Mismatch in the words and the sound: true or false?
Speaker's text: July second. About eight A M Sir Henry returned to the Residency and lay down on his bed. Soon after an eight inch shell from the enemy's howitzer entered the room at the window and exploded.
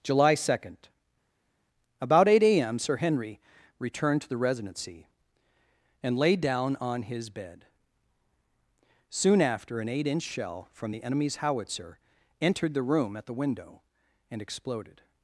false